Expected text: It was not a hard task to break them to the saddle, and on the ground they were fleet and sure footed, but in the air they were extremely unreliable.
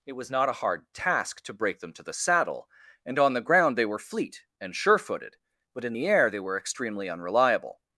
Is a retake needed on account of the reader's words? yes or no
no